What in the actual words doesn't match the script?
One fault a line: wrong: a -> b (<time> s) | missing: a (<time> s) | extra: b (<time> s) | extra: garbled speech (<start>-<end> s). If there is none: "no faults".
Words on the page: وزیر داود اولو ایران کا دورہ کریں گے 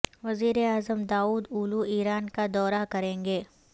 extra: اعظم (0.6 s)